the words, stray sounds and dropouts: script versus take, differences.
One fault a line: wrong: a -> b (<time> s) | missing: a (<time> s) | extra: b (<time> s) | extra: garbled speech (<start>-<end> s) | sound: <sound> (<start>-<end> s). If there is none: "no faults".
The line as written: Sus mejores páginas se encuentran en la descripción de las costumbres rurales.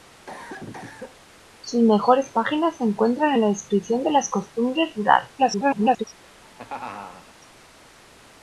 sound: cough (0.3-1.4 s)
extra: garbled speech (5.4-6.0 s)
sound: laugh (6.2-7.4 s)